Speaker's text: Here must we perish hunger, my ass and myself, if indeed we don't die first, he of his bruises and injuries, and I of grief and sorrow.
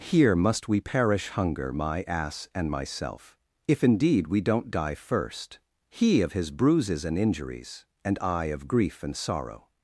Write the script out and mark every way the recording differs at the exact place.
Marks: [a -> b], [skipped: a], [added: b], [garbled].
Here must we perish hunger, my ass and myself, if indeed we don't die first, he of his bruises and injuries, and I of grief and sorrow.